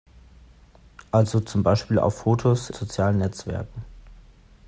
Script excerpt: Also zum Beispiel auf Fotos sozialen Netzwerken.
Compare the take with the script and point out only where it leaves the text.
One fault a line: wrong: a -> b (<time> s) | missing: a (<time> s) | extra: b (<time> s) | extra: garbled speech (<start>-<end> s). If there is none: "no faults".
no faults